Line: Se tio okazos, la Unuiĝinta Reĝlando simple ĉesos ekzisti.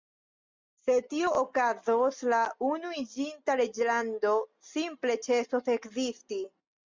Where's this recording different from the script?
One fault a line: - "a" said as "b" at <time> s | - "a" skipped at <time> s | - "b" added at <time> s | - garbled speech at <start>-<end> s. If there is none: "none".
none